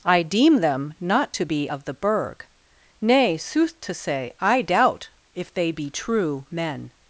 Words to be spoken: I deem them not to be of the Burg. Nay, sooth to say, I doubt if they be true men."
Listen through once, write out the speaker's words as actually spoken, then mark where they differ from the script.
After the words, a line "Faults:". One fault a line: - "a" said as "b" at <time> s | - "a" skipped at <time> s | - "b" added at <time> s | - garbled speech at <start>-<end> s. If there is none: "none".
I deem them not to be of the Burg. Nay, sooth to say, I doubt if they be true men."
Faults:
none